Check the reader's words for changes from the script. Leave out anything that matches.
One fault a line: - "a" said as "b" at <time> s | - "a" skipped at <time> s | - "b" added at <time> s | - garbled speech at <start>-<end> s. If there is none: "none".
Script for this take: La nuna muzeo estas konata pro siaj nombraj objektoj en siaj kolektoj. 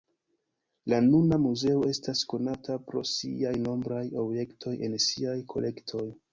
none